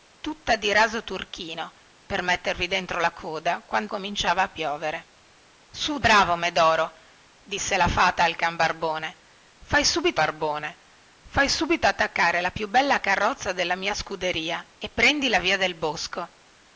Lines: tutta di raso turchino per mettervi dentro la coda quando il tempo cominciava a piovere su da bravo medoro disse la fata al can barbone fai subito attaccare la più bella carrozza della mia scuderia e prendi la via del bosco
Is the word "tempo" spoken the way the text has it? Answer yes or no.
no